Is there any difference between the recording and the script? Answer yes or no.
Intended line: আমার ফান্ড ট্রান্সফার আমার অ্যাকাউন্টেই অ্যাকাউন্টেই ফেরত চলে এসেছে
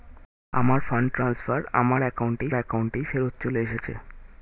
no